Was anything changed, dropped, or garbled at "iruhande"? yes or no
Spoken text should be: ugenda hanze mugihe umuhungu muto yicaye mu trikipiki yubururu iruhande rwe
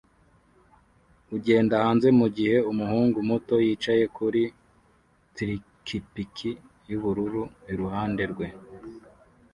no